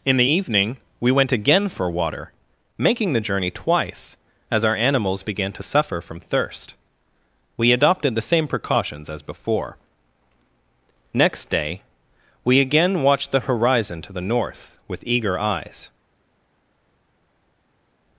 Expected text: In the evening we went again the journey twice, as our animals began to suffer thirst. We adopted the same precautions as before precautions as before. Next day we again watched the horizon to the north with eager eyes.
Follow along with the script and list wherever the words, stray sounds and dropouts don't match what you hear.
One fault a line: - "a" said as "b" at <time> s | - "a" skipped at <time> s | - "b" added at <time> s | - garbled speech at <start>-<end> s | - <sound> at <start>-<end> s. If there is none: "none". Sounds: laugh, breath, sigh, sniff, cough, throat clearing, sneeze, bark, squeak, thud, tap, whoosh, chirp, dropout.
- "for water making" added at 1.7 s
- "from" added at 6.0 s
- "precautions as before" skipped at 9.8 s